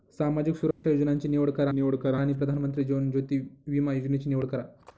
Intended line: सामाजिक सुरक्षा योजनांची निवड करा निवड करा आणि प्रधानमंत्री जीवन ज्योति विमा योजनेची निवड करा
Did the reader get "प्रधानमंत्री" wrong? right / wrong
right